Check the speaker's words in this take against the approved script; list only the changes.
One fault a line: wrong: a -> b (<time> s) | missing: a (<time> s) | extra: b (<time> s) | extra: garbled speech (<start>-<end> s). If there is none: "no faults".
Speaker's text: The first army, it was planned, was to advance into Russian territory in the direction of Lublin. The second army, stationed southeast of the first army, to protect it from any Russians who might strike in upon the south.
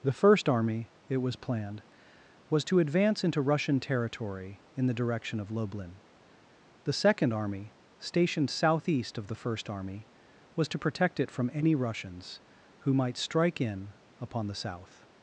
extra: was (10.6 s)